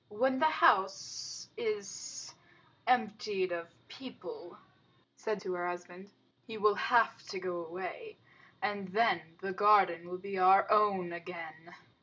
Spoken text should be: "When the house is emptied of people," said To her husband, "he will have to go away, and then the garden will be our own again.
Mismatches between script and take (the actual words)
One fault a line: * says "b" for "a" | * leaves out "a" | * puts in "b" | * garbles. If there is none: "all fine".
all fine